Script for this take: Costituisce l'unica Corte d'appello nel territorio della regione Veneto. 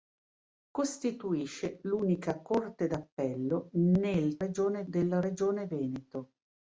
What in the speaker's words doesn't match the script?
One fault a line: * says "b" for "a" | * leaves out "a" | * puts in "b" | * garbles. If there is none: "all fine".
* says "regione" for "territorio"